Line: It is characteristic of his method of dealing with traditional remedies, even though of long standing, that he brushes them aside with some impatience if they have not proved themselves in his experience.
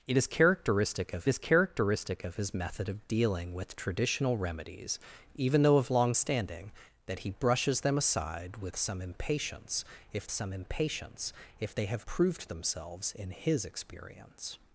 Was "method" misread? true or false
false